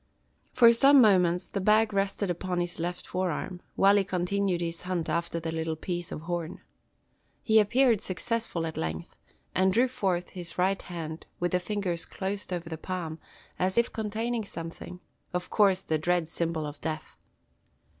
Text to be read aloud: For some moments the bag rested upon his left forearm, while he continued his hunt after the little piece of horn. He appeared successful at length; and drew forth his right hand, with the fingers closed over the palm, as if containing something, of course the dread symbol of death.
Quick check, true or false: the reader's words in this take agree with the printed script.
true